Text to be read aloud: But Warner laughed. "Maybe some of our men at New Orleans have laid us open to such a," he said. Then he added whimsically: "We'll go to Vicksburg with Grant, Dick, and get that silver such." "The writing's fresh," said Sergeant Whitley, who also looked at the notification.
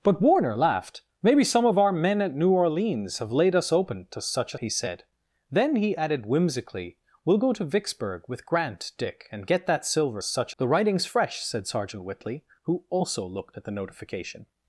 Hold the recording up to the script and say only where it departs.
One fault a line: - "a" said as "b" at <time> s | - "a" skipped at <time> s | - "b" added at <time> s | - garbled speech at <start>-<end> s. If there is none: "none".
none